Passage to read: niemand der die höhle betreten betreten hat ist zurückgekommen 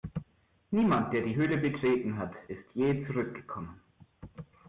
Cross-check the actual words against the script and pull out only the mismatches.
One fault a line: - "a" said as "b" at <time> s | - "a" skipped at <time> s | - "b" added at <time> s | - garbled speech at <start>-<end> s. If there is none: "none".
- "betreten" skipped at 2.2 s
- "je" added at 2.7 s